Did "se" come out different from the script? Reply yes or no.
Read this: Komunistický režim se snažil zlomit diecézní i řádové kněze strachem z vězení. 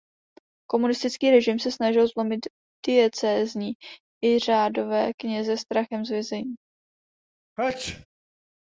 no